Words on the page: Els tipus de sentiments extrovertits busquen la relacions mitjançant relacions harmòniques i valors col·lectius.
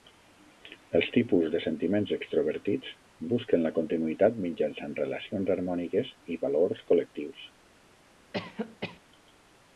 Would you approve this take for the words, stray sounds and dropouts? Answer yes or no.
no